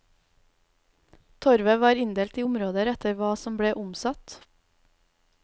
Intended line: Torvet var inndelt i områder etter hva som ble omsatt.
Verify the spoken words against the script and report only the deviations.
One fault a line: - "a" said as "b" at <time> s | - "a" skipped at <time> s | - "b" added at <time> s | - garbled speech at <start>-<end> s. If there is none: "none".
none